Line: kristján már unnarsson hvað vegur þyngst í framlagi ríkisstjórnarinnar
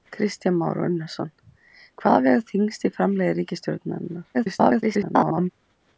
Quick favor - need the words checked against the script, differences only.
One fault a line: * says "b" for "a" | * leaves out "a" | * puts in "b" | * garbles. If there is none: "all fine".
* garbles